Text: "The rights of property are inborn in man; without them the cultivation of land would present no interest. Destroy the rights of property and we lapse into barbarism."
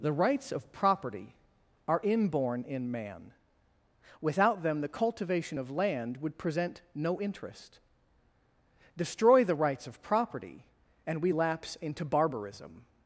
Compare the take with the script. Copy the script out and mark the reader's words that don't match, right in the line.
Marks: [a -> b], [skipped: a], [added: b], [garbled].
"The rights of property are inborn in man; without them the cultivation of land would present no interest. Destroy the rights of property and we lapse into barbarism."